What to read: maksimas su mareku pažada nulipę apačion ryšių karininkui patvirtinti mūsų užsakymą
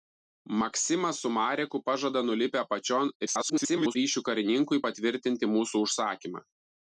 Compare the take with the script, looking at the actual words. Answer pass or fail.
fail